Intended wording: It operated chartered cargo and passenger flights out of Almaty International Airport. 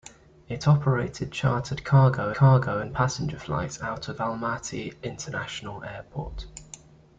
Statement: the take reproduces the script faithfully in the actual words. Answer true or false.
false